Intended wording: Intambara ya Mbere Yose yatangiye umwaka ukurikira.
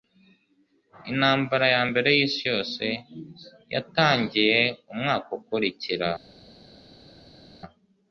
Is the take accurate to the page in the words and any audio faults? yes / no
no